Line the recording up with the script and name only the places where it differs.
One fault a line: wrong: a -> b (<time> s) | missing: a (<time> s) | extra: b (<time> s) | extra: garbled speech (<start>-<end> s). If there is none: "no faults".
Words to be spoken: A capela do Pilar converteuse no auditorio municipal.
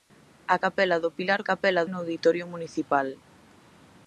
wrong: converteuse -> capela (1.5 s)